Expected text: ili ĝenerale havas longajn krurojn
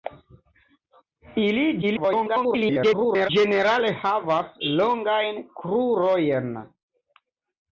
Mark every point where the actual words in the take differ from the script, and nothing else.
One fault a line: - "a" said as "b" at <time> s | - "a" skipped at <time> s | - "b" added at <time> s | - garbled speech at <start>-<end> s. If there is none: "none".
- garbled speech at 1.8-3.3 s